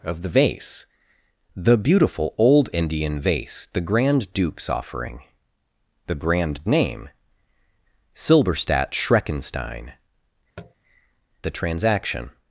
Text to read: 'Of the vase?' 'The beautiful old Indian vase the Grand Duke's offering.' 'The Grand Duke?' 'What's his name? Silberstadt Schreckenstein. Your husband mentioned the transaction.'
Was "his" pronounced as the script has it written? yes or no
no